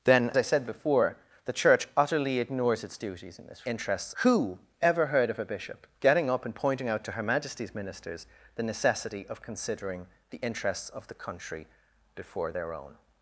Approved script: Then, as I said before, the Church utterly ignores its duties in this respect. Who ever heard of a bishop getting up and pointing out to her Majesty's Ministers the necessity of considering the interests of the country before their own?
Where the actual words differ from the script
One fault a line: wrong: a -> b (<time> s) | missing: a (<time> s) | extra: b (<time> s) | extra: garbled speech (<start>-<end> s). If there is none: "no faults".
missing: as (0.3 s)
wrong: respect -> interests (3.6 s)